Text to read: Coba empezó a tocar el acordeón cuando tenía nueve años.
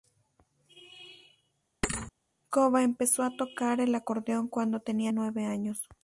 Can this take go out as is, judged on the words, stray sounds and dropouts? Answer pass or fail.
fail